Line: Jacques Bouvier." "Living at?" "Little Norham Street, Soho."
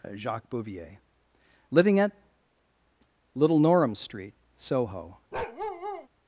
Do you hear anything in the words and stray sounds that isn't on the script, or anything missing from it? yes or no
yes